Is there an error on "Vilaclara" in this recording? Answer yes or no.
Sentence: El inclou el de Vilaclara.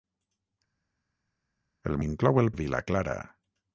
no